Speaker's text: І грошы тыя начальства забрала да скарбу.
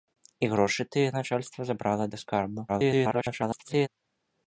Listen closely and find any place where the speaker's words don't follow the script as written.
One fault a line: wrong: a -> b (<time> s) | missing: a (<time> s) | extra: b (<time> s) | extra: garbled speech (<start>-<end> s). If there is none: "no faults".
extra: garbled speech (2.7-3.9 s)